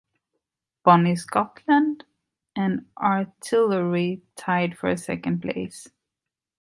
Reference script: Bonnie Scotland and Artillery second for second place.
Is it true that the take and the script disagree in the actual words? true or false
true